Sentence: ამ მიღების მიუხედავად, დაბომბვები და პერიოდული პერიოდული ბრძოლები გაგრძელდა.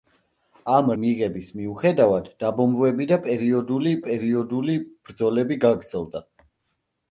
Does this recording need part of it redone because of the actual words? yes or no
no